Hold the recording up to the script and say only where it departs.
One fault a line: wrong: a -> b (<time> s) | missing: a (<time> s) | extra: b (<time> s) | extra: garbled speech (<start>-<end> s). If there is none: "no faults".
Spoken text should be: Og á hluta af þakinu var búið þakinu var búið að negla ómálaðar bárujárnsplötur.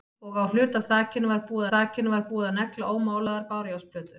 no faults